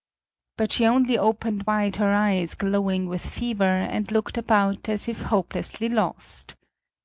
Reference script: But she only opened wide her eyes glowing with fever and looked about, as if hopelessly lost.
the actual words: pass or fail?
pass